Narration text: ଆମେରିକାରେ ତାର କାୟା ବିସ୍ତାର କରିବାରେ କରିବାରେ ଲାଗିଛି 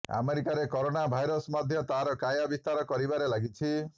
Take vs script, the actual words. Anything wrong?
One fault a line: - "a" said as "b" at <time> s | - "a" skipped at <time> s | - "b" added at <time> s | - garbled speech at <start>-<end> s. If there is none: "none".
- "କରୋନା ଭାଇରସ୍ ମଧ୍ୟ" added at 0.7 s
- "କରିବାରେ" skipped at 3.3 s